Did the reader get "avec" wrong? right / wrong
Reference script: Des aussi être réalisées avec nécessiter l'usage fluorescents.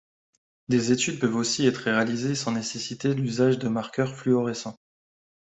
wrong